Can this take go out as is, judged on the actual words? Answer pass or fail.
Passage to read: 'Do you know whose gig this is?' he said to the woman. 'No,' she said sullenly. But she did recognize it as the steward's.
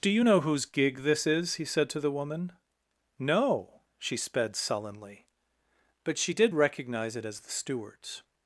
fail